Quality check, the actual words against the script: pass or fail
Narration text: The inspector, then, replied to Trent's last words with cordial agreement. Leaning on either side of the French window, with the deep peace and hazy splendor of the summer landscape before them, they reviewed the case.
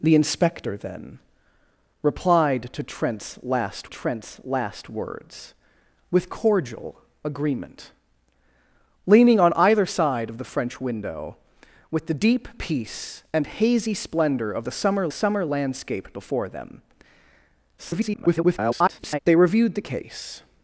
fail